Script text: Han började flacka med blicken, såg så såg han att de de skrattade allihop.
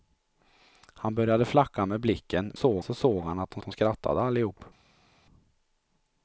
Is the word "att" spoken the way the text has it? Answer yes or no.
yes